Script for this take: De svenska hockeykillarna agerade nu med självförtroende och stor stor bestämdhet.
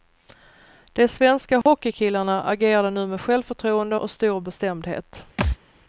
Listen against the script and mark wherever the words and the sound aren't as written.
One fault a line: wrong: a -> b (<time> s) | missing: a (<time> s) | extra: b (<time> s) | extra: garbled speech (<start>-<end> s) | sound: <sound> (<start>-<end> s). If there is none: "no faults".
sound: dropout (1.6-1.7 s)
missing: stor (4.4 s)
sound: thud (5.4-5.6 s)